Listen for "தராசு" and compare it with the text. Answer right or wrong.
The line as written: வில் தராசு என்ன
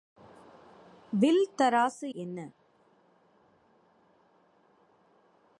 right